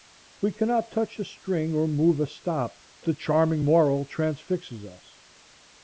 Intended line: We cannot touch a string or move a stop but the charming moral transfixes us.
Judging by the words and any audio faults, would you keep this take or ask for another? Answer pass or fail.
fail